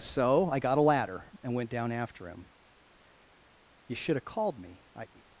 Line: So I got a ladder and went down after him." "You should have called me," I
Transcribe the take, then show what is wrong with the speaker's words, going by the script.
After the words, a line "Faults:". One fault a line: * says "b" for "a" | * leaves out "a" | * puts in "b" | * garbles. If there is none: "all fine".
So I got a ladder and went down after him." "You should have called me," I
Faults:
all fine